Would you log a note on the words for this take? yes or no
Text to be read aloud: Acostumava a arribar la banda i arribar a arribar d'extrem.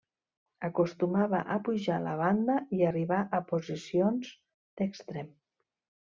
yes